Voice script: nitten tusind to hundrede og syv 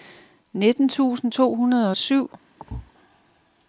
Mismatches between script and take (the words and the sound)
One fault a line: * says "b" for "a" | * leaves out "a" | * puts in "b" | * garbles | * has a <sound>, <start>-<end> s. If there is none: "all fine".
* has a thud, 2.6-2.9 s